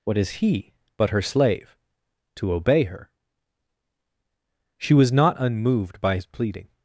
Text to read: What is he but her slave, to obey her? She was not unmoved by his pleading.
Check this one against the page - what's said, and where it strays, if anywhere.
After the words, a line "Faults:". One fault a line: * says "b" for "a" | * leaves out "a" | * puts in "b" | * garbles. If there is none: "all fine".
What is he but her slave, to obey her? She was not unmoved by his pleading.
Faults:
all fine